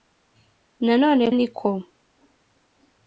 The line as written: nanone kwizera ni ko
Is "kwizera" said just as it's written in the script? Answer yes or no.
no